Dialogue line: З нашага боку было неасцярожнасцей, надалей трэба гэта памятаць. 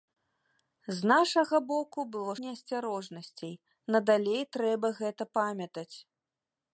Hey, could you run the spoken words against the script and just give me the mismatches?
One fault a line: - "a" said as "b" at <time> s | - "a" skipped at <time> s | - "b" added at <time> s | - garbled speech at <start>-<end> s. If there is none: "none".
none